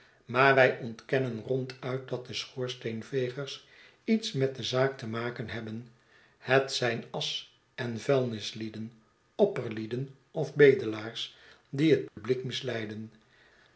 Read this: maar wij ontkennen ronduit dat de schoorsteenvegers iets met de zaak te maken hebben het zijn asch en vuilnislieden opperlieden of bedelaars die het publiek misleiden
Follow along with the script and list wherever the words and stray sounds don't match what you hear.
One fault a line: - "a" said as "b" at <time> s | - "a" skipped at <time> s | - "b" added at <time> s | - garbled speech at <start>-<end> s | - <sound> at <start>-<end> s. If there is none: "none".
- dropout at 12.1-12.2 s